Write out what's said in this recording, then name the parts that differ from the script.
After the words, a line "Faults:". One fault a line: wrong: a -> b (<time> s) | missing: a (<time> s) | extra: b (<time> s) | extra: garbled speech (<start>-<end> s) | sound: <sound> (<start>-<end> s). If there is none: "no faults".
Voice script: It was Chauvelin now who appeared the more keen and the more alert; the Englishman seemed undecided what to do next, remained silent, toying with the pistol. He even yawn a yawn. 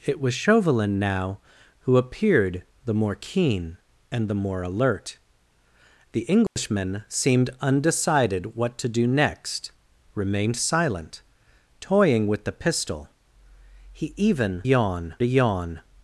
It was Chauvelin now who appeared the more keen and the more alert; the Englishman seemed undecided what to do next, remained silent, toying with the pistol. He even yawn a yawn.
Faults:
sound: dropout (6.5-6.6 s)